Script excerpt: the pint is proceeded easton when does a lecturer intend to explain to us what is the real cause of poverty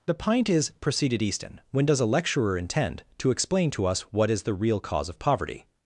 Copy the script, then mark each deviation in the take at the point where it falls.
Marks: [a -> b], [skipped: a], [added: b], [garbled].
the pint is proceeded easton when does a lecturer intend to explain to us what is the real cause of poverty